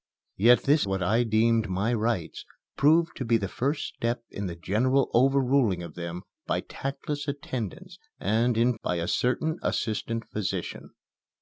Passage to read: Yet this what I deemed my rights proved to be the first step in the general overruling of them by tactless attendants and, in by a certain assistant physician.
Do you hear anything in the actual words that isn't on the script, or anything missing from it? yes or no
no